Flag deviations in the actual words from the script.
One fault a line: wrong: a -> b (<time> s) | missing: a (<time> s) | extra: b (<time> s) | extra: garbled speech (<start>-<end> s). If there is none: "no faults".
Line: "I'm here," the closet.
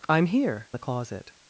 no faults